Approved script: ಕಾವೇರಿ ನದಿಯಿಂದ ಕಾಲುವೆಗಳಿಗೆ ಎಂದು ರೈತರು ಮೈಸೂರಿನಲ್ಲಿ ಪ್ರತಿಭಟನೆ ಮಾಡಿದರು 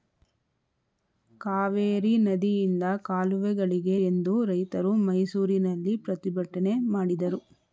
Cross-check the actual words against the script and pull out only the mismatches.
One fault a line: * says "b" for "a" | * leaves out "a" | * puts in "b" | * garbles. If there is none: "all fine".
all fine